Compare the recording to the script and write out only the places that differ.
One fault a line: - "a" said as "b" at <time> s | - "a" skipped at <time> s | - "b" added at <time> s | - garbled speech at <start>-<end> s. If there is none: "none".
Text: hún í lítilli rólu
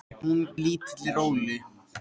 none